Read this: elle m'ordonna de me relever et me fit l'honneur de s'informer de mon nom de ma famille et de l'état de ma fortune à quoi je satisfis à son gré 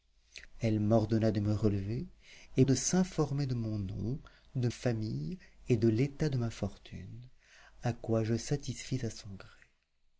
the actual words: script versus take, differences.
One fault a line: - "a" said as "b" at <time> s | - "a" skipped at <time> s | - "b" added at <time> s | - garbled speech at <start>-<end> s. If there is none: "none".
- "me fit l'honneur" skipped at 2.6 s
- "ma" skipped at 4.7 s